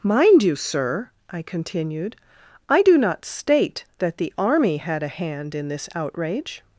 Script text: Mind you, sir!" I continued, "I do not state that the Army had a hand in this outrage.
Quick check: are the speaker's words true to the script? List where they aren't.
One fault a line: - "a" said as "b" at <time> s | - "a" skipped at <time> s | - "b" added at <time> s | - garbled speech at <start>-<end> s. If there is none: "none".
none